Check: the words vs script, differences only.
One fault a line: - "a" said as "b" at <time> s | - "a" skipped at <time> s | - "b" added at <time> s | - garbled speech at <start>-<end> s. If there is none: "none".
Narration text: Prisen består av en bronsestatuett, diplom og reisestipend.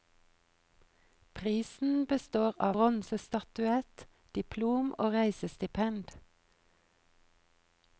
- "en" skipped at 2.8 s